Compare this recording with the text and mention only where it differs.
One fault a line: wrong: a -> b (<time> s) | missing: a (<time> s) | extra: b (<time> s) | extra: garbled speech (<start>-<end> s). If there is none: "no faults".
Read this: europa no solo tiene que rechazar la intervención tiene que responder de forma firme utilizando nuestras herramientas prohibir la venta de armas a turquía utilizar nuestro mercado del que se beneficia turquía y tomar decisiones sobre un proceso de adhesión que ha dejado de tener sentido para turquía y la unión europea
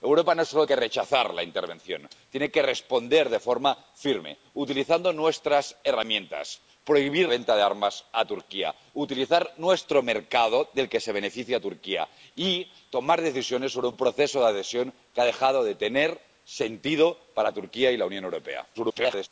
missing: tiene (0.7 s)
missing: la (7.3 s)
extra: garbled speech (18.7-19.3 s)